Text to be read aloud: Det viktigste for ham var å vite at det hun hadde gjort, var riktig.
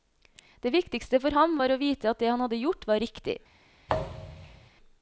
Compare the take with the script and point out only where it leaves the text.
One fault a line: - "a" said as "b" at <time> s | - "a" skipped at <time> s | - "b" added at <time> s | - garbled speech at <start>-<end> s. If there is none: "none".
- "hun" said as "han" at 2.3 s